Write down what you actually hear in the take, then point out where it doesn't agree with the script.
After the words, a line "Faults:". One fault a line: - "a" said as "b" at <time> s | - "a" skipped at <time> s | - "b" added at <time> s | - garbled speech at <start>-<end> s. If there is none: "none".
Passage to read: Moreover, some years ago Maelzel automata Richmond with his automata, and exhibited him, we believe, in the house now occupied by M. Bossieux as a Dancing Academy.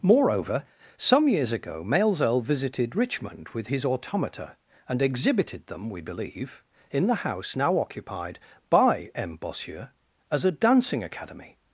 Moreover, some years ago Maelzel visited Richmond with his automata, and exhibited them, we believe, in the house now occupied by M. Bossieux as a Dancing Academy.
Faults:
- "automata" said as "visited" at 2.4 s
- "him" said as "them" at 5.7 s